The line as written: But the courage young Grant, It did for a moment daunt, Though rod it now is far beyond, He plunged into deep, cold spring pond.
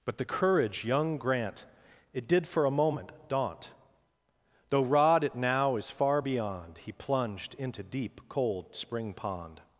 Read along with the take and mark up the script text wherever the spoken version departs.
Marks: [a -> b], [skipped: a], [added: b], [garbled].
But the courage young Grant, It did for a moment daunt, Though rod it now is far beyond, He plunged into deep, cold spring pond.